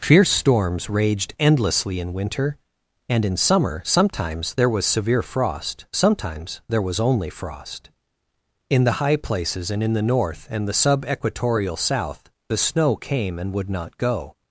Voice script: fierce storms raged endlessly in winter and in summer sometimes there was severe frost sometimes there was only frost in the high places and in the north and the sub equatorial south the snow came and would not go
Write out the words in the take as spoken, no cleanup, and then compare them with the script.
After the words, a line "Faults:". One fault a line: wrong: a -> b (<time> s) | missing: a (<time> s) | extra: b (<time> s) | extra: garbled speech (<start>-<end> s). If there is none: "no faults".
fierce storms raged endlessly in winter and in summer sometimes there was severe frost sometimes there was only frost in the high places and in the north and the sub equatorial south the snow came and would not go
Faults:
no faults